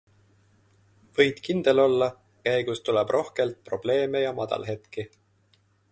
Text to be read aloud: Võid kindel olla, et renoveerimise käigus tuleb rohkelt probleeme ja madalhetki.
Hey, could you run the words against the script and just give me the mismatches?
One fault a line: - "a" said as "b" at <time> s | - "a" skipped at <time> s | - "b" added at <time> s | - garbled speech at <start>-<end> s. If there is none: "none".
- "et renoveerimise" skipped at 2.1 s